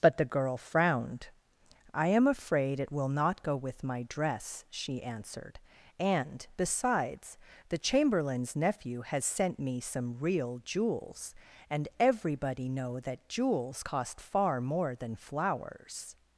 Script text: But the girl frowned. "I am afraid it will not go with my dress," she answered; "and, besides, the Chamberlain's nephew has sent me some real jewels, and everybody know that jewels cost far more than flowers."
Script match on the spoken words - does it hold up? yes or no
yes